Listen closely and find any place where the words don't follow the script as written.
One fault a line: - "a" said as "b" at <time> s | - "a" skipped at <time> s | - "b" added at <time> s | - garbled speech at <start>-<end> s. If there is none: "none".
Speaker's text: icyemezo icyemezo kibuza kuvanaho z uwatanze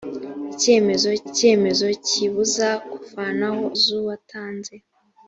none